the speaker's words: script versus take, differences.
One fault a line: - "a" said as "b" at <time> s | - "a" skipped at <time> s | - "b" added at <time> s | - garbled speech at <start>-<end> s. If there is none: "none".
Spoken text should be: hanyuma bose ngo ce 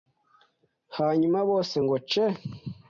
none